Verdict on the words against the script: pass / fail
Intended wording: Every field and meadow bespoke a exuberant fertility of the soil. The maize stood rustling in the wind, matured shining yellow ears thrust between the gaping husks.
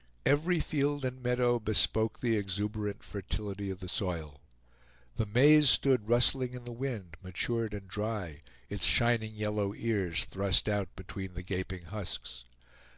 fail